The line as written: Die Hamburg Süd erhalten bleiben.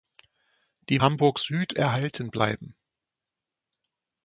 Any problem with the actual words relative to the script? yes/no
no